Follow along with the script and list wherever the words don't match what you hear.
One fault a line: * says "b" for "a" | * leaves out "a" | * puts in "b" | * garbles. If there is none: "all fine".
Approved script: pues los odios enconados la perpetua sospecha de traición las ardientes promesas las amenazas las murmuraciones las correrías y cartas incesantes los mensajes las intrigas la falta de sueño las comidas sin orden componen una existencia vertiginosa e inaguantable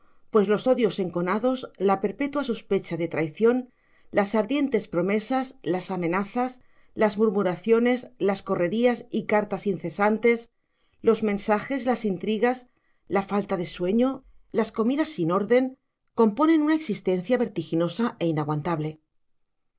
all fine